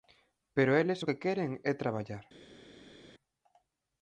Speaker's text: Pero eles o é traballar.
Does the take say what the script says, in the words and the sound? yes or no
no